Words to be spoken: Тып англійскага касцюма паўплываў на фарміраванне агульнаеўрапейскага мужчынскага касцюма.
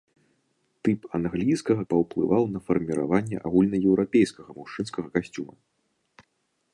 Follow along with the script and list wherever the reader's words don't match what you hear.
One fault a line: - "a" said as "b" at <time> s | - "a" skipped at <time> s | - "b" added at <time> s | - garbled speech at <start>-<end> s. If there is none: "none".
- "касцюма" skipped at 1.8 s